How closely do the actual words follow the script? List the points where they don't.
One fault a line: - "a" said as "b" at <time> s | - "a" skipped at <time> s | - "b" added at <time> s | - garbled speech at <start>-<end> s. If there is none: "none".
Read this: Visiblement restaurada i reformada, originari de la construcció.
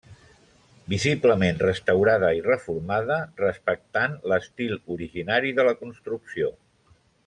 - "respectant l'estil" added at 3.4 s